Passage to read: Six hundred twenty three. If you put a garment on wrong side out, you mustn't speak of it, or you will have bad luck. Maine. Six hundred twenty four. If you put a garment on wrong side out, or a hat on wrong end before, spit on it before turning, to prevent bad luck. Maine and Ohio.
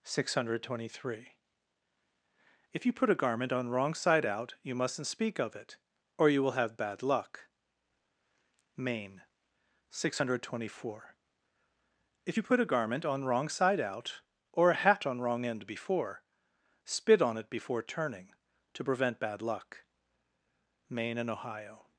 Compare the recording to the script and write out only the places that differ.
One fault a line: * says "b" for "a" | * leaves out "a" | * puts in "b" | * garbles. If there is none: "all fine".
all fine